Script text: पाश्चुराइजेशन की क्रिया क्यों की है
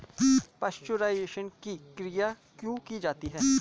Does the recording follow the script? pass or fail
fail